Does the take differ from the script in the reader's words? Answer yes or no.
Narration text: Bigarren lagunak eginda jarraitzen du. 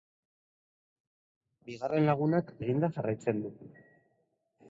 no